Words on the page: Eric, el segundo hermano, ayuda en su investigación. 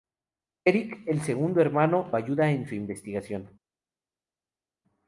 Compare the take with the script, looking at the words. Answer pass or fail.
pass